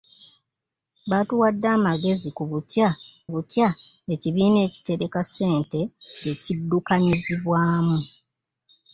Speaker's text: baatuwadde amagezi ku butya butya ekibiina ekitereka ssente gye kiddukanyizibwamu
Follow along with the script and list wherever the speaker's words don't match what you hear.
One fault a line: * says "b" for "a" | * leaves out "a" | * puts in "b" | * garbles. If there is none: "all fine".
all fine